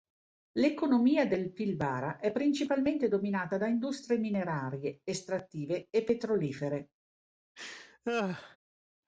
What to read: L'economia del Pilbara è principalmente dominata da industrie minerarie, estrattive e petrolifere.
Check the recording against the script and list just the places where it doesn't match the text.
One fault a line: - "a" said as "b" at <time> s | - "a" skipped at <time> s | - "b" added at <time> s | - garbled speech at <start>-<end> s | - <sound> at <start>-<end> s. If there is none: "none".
- laugh at 7.6-8.6 s